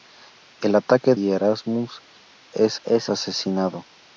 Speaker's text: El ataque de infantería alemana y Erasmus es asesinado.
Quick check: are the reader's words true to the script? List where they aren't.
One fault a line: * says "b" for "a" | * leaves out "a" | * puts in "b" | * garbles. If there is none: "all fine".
* leaves out "de infantería alemana"
* puts in "es"